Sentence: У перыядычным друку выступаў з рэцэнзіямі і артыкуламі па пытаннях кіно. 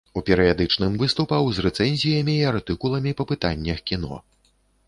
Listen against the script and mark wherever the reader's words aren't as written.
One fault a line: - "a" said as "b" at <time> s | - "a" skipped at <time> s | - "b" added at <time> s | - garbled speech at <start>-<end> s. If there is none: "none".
- "друку" skipped at 0.9 s